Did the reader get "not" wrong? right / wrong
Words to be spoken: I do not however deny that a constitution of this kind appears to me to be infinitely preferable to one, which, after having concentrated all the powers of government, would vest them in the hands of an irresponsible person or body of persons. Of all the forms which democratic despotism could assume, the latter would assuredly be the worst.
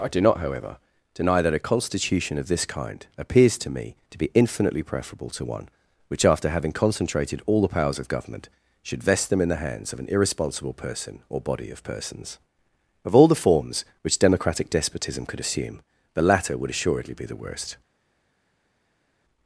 right